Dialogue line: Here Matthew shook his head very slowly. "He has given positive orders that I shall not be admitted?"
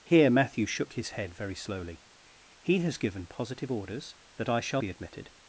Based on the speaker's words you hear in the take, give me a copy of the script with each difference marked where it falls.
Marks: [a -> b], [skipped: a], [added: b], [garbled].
Here Matthew shook his head very slowly. "He has given positive orders that I shall [skipped: not] be admitted?"